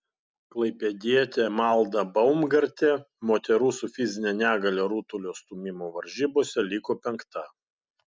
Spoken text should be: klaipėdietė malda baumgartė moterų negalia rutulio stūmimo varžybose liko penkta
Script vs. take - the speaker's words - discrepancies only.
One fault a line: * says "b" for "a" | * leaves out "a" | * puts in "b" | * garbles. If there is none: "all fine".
* puts in "su fizine"